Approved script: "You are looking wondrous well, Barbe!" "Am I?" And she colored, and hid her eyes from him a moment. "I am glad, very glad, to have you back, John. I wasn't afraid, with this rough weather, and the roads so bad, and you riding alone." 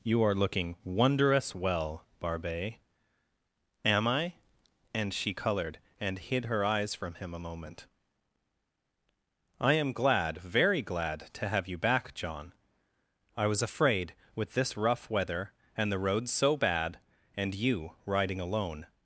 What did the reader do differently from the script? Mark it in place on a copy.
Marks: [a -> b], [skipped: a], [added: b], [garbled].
"You are looking wondrous well, Barbe!" "Am I?" And she colored, and hid her eyes from him a moment. "I am glad, very glad, to have you back, John. I [wasn't -> was] afraid, with this rough weather, and the roads so bad, and you riding alone."